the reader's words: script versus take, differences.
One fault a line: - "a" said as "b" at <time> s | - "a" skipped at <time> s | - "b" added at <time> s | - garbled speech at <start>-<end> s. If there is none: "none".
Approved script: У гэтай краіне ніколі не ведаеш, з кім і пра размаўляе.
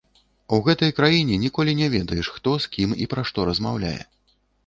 - "хто" added at 2.4 s
- "што" added at 3.3 s